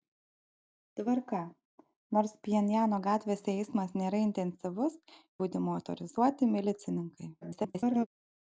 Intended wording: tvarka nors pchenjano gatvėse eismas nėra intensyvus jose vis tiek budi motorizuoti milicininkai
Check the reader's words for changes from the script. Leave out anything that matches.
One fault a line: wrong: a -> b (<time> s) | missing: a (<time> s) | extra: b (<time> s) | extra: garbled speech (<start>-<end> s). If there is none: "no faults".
missing: jose vis tiek (5.0 s)
extra: garbled speech (7.4-8.1 s)